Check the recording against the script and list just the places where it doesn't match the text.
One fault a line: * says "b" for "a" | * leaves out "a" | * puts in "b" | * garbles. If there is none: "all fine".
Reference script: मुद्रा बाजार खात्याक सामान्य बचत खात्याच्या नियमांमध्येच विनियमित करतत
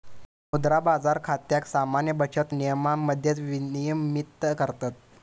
* leaves out "खात्याच्या"